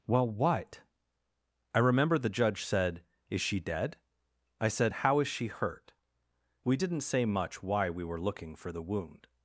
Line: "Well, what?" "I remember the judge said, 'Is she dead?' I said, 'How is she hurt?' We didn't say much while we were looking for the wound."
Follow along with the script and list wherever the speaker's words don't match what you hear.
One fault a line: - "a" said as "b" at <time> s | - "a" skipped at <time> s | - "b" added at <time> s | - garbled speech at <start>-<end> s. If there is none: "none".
- "while" said as "why" at 7.6 s